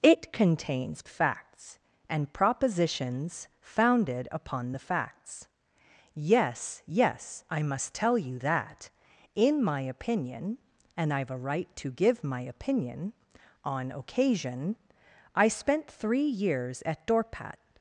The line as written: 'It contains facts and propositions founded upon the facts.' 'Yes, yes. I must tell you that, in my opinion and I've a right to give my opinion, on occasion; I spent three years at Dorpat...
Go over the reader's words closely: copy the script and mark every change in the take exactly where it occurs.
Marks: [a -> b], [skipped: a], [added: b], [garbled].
'It contains facts and propositions founded upon the facts.' 'Yes, yes. I must tell you that, in my opinion and I've a right to give my opinion, on occasion; I spent three years at Dorpat...